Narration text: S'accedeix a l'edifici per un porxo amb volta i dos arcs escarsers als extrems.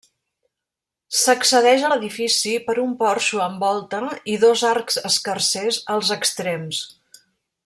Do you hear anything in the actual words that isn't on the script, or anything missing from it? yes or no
no